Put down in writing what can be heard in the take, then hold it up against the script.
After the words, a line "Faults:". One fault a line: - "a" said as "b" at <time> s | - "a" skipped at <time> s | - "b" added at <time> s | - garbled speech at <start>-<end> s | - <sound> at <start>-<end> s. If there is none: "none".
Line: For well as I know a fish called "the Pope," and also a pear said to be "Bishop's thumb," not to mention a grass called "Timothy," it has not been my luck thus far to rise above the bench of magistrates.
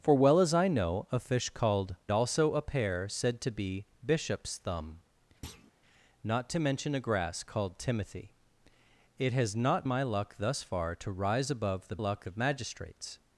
For well as I know a fish called "also a pear said to be "Bishop's thumb," not to mention a grass called "Timothy," it has not my luck thus far to rise above the luck of magistrates.
Faults:
- "the Pope and" skipped at 1.9 s
- thud at 5.4-5.7 s
- "been" skipped at 9.9 s
- "bench" said as "luck" at 12.0 s